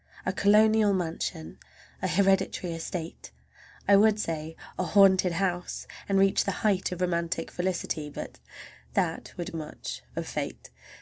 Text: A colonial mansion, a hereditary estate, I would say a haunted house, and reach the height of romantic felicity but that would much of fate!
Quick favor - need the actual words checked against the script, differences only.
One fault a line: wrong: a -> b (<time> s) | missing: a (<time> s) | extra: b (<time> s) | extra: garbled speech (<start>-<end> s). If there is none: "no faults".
no faults